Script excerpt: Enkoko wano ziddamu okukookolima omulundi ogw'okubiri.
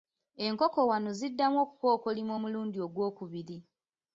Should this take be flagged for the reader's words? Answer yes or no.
no